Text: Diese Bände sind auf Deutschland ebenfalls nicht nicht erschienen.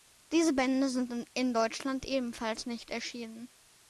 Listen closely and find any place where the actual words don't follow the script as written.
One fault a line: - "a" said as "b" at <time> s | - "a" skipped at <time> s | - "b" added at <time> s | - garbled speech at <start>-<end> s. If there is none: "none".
- "auf" said as "in" at 1.3 s
- "nicht" skipped at 2.9 s